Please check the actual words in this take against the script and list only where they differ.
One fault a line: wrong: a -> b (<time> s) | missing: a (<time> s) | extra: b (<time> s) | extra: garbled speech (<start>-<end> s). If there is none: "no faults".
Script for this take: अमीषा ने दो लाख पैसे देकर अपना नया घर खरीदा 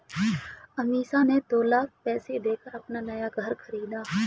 no faults